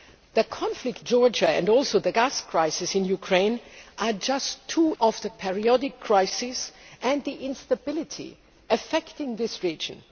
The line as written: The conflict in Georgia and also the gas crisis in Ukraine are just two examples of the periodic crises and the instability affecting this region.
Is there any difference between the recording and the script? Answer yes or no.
yes